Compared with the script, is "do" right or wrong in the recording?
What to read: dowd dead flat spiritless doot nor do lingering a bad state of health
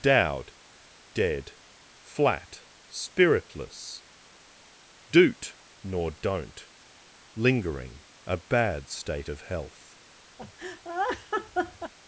wrong